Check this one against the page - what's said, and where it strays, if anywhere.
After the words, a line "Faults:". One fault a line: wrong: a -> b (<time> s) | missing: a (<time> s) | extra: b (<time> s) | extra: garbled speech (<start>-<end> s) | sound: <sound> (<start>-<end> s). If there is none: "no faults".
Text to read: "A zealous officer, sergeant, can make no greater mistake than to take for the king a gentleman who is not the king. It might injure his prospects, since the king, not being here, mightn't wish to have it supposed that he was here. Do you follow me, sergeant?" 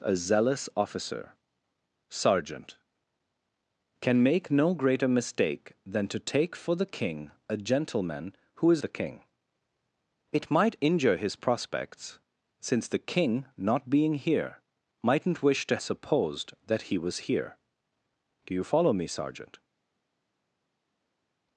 "A zealous officer, sergeant, can make no greater mistake than to take for the king a gentleman who is the king. It might injure his prospects, since the king, not being here, mightn't wish to supposed that he was here. Do you follow me, sergeant?"
Faults:
missing: not (8.8 s)
missing: have it (15.8 s)